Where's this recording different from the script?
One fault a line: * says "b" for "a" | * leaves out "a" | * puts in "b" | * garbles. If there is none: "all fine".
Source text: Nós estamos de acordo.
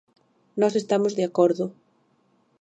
all fine